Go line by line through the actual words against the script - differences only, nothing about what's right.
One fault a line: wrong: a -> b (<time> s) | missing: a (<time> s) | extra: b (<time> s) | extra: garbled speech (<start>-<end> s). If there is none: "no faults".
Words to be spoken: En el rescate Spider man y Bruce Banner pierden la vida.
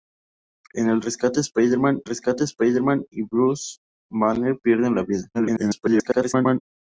extra: rescate Spider man (2.0 s)
extra: garbled speech (5.3-6.6 s)